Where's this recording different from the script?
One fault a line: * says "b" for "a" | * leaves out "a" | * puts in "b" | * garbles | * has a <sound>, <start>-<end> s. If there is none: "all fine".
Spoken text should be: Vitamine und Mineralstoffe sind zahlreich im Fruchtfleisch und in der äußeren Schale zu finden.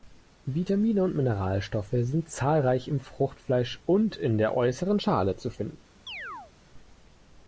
* has a chirp, 6.1-6.5 s